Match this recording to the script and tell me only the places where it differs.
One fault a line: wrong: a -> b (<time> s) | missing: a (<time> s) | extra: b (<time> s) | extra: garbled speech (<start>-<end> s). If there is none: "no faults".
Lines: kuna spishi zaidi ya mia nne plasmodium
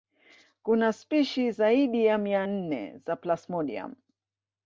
extra: za (3.0 s)